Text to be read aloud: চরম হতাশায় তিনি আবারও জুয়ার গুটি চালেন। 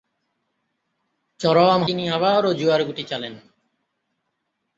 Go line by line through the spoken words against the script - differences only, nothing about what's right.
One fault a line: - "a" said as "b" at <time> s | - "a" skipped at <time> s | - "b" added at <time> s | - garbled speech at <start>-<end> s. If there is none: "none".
- "হতাশায়" skipped at 1.8 s